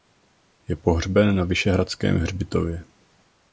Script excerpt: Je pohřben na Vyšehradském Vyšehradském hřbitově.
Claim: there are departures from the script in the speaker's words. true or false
true